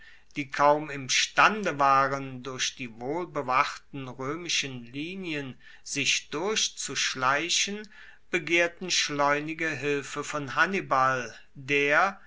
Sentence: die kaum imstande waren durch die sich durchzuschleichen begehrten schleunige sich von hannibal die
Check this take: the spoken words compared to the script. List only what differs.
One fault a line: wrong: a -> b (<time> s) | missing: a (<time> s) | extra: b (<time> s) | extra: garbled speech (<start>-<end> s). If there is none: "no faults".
extra: wohlbewachten roemischen linien (3.0 s)
wrong: sich -> hilfe (9.7 s)
wrong: die -> der (11.5 s)